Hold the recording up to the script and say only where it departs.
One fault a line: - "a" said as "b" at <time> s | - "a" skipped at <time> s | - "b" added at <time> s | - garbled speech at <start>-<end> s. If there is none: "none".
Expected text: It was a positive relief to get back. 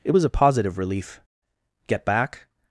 - "to" skipped at 1.2 s